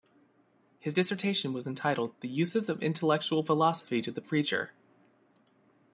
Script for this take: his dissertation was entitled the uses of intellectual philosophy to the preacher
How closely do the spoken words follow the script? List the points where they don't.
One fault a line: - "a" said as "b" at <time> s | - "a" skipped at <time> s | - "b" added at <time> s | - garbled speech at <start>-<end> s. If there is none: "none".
none